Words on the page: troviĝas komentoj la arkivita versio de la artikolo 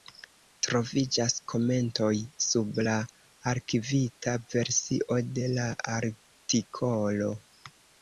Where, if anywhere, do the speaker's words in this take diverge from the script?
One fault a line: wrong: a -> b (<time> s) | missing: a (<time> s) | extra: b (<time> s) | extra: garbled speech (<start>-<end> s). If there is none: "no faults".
extra: sub (2.5 s)